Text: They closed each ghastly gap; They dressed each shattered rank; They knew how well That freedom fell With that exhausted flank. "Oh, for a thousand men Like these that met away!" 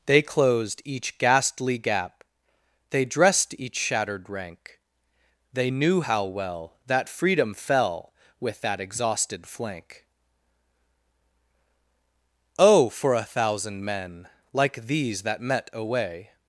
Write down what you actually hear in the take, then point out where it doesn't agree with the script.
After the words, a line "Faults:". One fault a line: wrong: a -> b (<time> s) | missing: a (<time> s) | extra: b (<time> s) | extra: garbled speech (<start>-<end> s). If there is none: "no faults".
They closed each ghastly gap; They dressed each shattered rank; They knew how well That freedom fell With that exhausted flank. "Oh, for a thousand men Like these that met away!"
Faults:
no faults